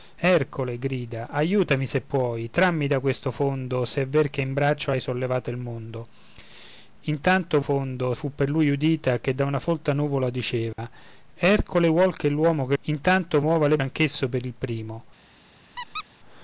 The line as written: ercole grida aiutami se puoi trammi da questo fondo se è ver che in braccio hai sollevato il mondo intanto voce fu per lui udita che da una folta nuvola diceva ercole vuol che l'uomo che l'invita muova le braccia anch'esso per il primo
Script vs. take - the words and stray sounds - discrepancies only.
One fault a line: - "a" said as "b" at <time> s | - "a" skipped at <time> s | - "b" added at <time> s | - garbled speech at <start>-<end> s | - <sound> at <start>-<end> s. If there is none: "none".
- "voce" said as "fondo" at 7.6 s
- dropout at 10.7-10.8 s
- "l'invita" said as "intanto" at 12.8 s
- "braccia" skipped at 13.8 s
- squeak at 15.8-16.0 s